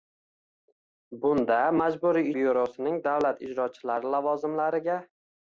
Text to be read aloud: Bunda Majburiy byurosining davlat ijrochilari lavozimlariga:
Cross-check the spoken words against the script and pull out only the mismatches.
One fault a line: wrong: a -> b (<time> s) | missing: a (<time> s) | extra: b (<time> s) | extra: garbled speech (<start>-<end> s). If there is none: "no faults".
no faults